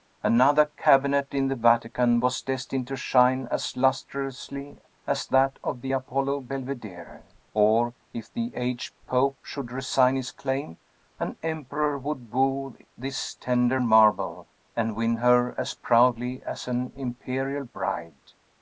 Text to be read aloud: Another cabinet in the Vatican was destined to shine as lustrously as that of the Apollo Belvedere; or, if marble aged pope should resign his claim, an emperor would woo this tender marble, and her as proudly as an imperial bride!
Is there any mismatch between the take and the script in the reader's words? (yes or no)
yes